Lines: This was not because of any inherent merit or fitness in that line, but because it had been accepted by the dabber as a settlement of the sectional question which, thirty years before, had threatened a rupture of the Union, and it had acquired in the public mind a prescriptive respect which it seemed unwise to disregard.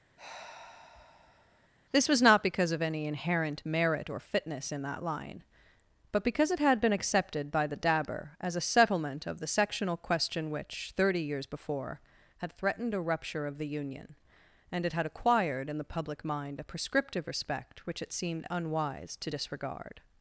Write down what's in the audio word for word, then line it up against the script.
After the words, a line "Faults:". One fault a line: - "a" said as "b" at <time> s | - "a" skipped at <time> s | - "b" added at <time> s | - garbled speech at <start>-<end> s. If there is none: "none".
This was not because of any inherent merit or fitness in that line, but because it had been accepted by the dabber as a settlement of the sectional question which, thirty years before, had threatened a rupture of the Union, and it had acquired in the public mind a prescriptive respect which it seemed unwise to disregard.
Faults:
none